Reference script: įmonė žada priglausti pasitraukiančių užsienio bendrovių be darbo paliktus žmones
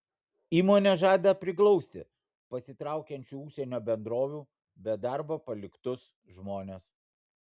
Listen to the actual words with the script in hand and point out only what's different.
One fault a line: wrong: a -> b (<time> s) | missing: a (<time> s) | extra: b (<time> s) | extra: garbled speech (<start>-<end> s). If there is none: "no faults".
no faults